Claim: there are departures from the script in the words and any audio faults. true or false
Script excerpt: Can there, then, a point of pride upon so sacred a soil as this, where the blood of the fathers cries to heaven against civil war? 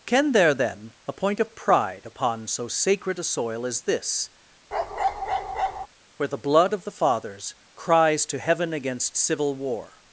true